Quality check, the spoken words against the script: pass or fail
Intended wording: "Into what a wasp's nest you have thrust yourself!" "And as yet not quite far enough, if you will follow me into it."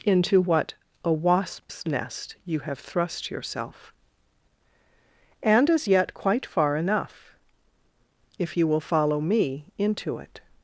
fail